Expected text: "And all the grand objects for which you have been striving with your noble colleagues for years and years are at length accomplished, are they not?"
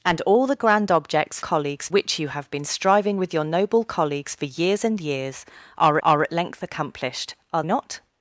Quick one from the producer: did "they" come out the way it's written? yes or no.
no